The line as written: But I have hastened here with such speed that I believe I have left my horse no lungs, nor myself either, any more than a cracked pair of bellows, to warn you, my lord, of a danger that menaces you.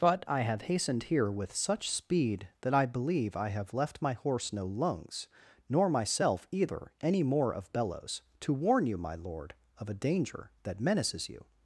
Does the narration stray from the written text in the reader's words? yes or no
yes